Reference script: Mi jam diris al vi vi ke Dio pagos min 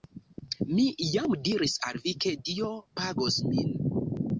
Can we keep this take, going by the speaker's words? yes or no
no